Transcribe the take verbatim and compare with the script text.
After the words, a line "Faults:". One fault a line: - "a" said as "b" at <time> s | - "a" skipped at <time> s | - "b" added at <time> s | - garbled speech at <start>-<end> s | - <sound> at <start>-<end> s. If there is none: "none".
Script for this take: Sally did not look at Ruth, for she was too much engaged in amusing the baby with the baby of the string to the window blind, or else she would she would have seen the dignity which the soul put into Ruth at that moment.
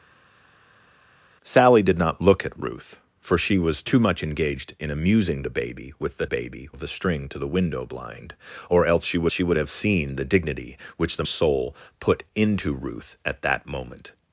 Sally did not look at Ruth, for she was too much engaged in amusing the baby with the baby of the string to the window blind, or else she would she would have seen the dignity which the soul put into Ruth at that moment.
Faults:
none